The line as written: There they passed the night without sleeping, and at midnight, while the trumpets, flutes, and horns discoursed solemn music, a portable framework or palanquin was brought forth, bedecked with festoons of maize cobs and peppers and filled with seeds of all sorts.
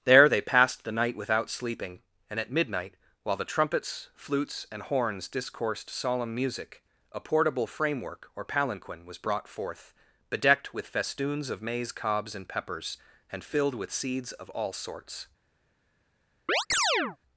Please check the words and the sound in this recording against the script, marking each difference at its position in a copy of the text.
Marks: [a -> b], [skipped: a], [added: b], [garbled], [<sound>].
There they passed the night without sleeping, and at midnight, while the trumpets, flutes, and horns discoursed solemn music, a portable framework or palanquin was brought forth, bedecked with festoons of maize cobs and peppers and filled with seeds of all sorts. [chirp]